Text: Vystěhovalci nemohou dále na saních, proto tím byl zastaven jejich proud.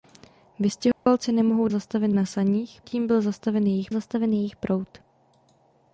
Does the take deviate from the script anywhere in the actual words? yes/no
yes